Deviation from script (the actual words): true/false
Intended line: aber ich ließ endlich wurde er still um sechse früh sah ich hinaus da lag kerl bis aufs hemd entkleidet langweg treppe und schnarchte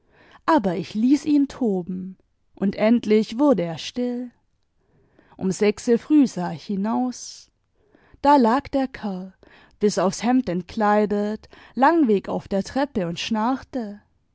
true